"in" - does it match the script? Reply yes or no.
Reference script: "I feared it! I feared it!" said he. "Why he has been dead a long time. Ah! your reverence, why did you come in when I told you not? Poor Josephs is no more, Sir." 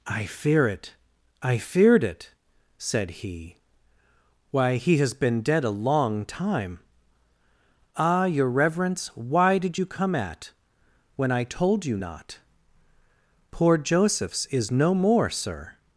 no